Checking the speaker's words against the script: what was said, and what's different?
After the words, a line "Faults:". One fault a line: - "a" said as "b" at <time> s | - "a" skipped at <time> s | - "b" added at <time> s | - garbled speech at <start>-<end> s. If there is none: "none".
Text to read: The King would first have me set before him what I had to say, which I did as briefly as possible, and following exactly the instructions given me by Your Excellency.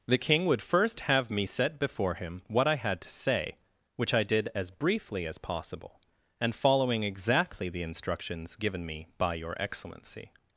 The King would first have me set before him what I had to say, which I did as briefly as possible, and following exactly the instructions given me by Your Excellency.
Faults:
none